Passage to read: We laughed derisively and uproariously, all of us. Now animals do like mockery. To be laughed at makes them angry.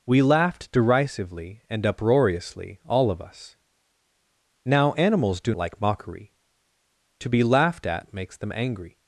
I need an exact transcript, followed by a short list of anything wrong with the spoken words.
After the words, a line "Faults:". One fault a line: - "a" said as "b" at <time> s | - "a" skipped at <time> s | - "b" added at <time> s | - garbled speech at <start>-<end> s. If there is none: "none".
We laughed derisively and uproariously, all of us. Now animals do like mockery. To be laughed at makes them angry.
Faults:
none